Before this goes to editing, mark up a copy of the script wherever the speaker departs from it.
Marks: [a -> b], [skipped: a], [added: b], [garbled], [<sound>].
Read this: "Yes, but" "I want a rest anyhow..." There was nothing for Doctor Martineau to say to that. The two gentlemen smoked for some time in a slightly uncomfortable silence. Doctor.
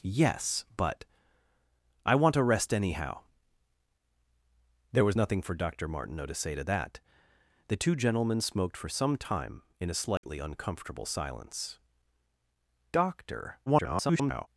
"Yes, but" "I want a rest anyhow..." There was nothing for Doctor Martineau to say to that. The two gentlemen smoked for some time in a slightly [dropout] uncomfortable silence. Doctor. [garbled]